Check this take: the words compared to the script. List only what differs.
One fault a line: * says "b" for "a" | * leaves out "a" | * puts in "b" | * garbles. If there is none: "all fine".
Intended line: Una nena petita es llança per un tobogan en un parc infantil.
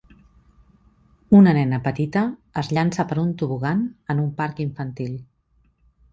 all fine